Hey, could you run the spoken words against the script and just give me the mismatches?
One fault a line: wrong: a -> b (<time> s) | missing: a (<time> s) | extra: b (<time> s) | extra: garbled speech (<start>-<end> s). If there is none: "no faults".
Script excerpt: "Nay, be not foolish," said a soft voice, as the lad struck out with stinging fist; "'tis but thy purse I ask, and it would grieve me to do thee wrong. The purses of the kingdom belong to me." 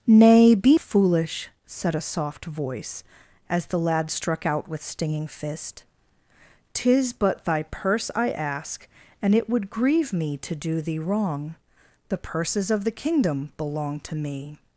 missing: not (0.8 s)